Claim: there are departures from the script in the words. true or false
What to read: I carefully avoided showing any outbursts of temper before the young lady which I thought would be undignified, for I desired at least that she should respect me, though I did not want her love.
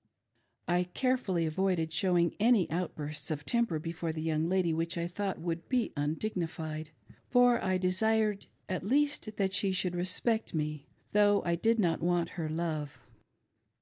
false